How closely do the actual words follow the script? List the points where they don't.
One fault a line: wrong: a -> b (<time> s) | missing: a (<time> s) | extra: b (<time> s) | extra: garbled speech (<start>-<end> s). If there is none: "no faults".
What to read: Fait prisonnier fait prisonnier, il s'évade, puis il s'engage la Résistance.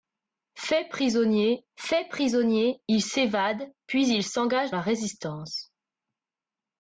no faults